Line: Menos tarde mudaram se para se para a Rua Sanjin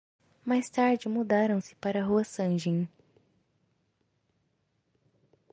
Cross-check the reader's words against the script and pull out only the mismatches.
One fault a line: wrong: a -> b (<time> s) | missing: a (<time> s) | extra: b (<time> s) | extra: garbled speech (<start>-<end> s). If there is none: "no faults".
wrong: Menos -> Mais (0.4 s)
missing: se para (2.0 s)